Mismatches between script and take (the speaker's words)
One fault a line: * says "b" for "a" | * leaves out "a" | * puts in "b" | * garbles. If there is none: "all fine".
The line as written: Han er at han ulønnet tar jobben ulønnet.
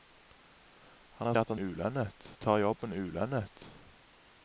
all fine